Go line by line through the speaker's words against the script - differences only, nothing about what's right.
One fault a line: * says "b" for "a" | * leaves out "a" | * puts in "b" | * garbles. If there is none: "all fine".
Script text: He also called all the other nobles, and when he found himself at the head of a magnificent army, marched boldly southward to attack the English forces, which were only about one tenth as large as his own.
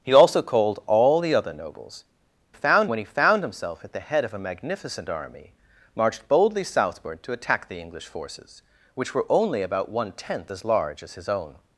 * says "found" for "and"